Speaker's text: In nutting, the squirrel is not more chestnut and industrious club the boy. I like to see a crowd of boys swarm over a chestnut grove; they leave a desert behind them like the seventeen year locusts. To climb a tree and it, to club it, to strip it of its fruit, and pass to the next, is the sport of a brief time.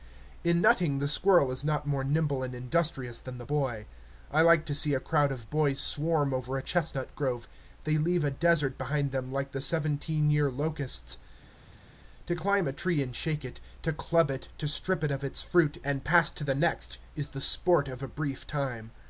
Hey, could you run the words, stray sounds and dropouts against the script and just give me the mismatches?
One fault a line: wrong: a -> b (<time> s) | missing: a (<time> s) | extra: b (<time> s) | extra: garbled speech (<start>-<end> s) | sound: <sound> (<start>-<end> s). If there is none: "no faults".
wrong: chestnut -> nimble (2.0 s)
wrong: club -> than (3.2 s)
extra: shake (13.1 s)